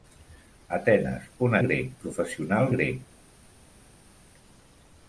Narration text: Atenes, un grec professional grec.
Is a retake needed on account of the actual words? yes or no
no